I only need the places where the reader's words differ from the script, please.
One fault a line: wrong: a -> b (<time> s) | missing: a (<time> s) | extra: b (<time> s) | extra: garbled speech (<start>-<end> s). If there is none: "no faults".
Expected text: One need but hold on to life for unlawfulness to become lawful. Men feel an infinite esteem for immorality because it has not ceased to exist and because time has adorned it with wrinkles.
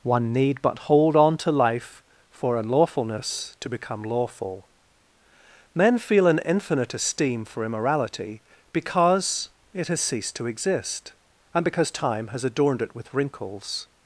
missing: not (10.0 s)